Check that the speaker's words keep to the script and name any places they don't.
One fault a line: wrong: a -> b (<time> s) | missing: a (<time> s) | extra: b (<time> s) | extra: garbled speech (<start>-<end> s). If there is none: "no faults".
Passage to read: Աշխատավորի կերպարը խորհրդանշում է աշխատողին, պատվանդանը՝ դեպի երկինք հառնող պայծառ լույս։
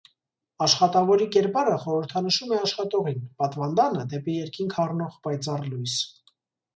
no faults